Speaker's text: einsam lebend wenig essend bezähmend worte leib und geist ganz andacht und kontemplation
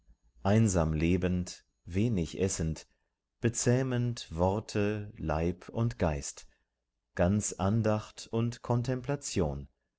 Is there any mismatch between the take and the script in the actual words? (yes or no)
no